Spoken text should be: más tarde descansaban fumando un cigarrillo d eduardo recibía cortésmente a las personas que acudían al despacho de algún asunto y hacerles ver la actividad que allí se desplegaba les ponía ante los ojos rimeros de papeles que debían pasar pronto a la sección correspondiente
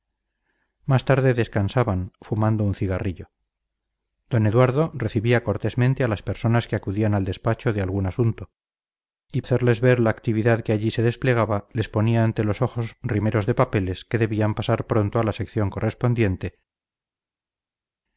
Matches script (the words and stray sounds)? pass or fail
pass